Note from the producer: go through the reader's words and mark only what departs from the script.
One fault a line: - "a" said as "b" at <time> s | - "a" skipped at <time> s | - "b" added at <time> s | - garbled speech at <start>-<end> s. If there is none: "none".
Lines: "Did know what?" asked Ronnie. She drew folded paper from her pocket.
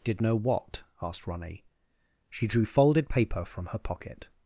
none